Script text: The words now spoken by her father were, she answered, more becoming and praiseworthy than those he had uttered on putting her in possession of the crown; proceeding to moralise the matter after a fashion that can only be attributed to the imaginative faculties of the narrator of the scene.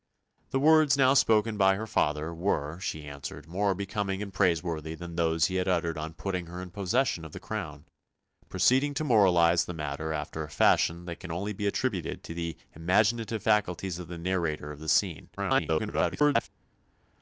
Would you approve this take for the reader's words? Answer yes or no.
no